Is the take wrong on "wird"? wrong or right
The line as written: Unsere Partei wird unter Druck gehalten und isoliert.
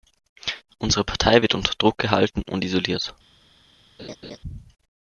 right